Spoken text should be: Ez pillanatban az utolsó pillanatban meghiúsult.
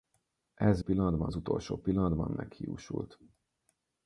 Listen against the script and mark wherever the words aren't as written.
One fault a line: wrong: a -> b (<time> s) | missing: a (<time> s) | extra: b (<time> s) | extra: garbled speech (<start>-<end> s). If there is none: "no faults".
no faults